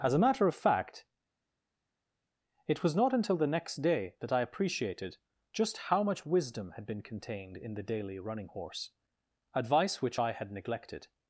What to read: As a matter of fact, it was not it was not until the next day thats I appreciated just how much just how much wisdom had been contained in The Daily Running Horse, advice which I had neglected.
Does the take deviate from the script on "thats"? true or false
true